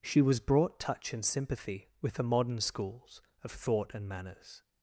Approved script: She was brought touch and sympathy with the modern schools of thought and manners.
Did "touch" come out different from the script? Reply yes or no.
no